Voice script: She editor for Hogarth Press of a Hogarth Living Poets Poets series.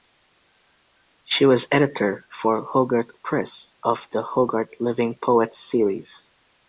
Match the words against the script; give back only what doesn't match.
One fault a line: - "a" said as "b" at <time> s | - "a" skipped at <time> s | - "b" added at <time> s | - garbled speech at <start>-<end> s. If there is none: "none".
- "was" added at 1.4 s
- "a" said as "the" at 4.1 s
- "Poets" skipped at 5.6 s